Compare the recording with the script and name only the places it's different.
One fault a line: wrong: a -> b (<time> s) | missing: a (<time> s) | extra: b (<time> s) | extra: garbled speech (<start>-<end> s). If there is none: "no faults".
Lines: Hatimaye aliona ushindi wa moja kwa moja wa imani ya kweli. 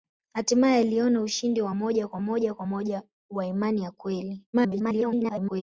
extra: kwa moja (2.5 s)
extra: garbled speech (4.5-5.6 s)